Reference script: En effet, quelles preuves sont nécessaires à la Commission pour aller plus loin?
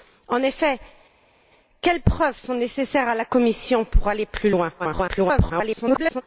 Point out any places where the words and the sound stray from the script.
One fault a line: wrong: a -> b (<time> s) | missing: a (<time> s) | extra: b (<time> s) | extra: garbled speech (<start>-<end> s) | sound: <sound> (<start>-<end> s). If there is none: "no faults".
extra: garbled speech (4.8-6.2 s)